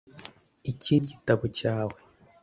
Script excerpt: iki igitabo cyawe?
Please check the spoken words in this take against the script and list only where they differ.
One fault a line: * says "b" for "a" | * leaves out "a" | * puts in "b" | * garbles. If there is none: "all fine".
all fine